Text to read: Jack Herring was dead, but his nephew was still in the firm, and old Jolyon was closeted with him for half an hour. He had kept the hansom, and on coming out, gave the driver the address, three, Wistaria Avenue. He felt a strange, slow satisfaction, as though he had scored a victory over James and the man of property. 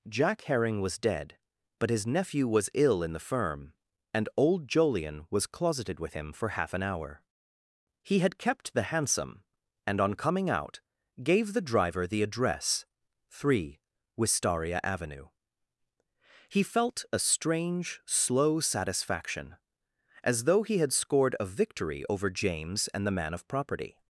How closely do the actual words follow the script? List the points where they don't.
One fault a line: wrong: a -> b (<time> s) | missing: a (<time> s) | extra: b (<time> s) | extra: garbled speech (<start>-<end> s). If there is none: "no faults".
wrong: still -> ill (2.7 s)